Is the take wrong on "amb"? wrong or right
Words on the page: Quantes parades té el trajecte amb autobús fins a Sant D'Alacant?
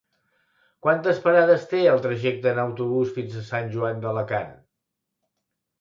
wrong